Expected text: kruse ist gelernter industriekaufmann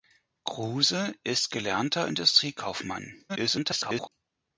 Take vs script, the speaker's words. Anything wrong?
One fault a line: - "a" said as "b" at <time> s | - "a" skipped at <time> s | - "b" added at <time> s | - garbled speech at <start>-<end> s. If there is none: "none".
- garbled speech at 3.3-4.1 s